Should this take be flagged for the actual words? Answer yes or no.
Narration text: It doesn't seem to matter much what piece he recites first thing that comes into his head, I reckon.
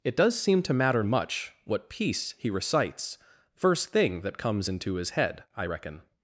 yes